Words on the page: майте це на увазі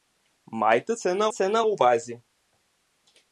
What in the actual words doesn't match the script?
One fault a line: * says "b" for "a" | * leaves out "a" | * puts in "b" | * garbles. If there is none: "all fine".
* puts in "це на"